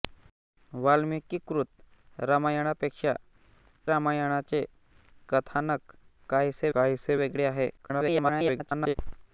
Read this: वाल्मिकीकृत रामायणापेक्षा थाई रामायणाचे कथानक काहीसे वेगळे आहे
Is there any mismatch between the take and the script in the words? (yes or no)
yes